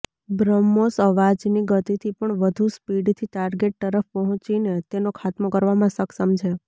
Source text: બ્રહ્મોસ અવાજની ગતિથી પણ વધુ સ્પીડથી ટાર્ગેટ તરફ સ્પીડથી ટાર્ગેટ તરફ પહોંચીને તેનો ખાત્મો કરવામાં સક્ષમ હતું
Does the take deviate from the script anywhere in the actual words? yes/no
yes